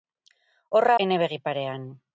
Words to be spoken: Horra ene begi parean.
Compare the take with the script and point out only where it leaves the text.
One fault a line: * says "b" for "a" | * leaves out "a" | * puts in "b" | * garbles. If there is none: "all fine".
all fine